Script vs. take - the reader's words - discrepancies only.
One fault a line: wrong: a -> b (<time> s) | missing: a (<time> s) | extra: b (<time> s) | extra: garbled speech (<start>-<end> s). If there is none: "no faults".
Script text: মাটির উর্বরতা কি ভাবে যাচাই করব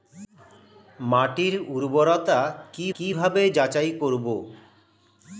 extra: কি (2.9 s)